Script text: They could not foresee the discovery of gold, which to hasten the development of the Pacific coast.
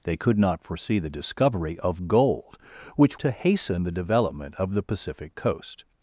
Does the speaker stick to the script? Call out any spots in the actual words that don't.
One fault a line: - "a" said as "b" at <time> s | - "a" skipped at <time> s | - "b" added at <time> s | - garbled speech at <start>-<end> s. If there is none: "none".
none